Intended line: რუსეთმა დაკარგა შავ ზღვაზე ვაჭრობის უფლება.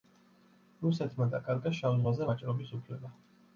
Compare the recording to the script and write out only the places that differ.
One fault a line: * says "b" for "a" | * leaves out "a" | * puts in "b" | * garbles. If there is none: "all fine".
all fine